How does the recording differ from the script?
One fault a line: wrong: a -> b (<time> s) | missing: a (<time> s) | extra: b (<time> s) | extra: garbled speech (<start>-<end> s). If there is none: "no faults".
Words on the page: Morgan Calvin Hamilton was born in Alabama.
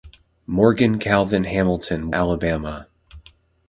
missing: was born in (2.1 s)